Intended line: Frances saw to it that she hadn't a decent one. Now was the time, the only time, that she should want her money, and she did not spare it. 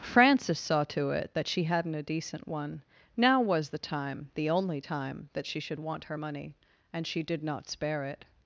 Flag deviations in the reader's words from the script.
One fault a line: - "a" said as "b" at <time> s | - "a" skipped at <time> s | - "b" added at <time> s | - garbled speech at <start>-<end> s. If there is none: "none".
none